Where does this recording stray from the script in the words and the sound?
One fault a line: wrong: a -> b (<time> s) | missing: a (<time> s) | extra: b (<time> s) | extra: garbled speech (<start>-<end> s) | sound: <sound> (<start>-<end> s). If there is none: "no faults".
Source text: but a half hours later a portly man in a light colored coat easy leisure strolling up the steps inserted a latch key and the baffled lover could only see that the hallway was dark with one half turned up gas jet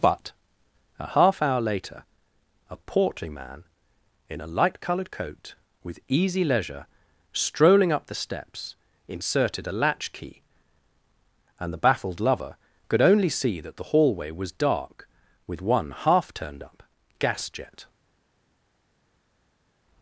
wrong: hours -> hour (1.4 s)
extra: with (5.8 s)